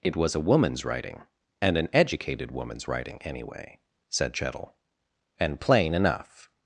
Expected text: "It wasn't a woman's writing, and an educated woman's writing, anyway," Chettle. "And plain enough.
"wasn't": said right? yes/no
no